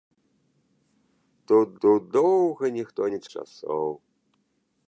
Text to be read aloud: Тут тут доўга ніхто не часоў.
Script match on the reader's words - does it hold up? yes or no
yes